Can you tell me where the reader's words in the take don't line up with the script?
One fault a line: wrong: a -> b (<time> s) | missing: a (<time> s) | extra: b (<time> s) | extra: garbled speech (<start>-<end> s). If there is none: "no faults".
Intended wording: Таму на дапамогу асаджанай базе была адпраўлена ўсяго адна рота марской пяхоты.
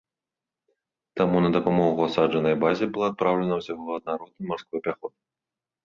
no faults